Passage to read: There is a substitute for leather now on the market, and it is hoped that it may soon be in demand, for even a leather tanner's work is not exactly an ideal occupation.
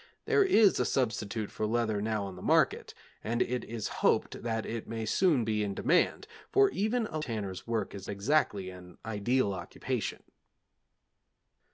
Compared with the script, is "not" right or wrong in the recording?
wrong